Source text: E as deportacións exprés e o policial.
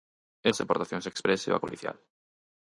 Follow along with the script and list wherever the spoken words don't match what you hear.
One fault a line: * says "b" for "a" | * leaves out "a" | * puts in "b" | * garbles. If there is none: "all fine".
all fine